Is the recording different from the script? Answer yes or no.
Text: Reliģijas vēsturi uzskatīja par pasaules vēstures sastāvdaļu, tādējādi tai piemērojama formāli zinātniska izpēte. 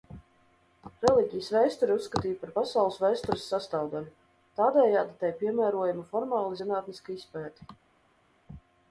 no